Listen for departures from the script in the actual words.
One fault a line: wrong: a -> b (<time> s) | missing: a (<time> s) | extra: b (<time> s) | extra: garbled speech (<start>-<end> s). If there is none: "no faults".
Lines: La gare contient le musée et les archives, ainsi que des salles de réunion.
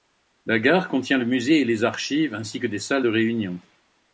no faults